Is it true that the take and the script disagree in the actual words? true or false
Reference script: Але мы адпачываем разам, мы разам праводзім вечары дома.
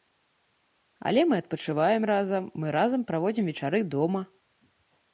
false